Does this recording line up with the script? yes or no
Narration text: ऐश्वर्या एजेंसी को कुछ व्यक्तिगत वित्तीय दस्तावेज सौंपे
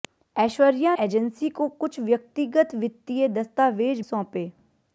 yes